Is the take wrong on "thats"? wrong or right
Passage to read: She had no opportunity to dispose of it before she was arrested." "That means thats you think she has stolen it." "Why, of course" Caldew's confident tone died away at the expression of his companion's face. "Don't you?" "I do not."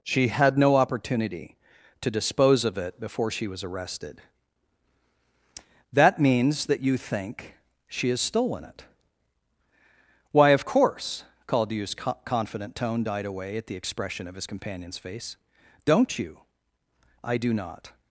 wrong